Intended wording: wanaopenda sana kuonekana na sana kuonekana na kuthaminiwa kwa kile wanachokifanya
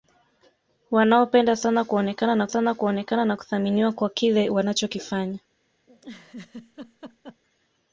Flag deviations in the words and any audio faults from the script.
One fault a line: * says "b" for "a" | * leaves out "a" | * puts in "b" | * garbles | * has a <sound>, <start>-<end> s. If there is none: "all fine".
* has a laugh, 5.9-7.4 s